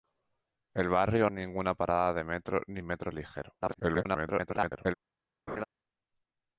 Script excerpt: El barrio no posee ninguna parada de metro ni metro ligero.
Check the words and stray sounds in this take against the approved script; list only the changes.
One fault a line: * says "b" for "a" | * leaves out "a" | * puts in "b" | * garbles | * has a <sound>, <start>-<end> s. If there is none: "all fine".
* leaves out "no posee"
* garbles
* has a laugh, 5.5-5.6 s